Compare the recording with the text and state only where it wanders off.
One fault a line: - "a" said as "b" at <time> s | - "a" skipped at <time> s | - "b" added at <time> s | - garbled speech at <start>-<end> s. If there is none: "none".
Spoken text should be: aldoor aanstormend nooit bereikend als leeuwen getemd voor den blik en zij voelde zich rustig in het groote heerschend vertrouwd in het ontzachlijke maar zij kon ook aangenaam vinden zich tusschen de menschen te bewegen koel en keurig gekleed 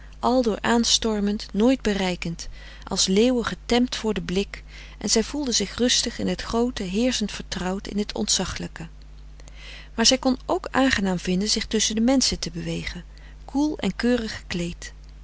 none